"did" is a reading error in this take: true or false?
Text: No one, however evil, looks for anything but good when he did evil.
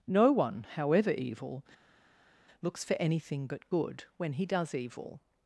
true